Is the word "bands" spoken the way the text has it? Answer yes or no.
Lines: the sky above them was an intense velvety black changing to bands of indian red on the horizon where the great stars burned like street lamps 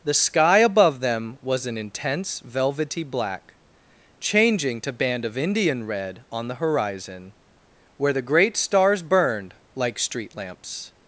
no